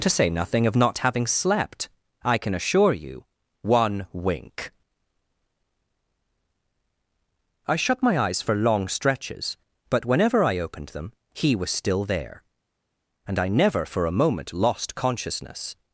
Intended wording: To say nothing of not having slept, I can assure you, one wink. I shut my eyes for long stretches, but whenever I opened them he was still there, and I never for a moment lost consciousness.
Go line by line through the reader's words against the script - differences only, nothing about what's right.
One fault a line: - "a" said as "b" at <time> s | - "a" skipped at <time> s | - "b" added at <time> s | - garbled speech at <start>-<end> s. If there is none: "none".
none